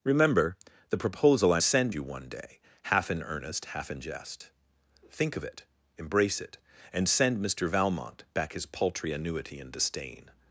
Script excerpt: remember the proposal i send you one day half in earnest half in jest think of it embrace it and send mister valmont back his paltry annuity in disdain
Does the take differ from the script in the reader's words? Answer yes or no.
no